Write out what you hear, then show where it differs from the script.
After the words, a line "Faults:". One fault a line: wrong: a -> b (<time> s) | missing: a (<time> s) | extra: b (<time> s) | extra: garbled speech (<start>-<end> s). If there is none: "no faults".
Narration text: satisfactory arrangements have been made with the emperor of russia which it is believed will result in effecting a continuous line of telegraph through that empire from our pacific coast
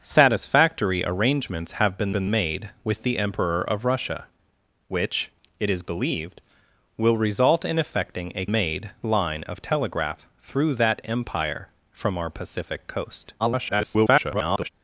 satisfactory arrangements have been been made with the emperor of russia which it is believed will result in effecting a made line of telegraph through that empire from our pacific coast [garbled]
Faults:
extra: been (2.1 s)
wrong: continuous -> made (8.5 s)
extra: garbled speech (13.4-14.7 s)